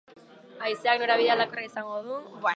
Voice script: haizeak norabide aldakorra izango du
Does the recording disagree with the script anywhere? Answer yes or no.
no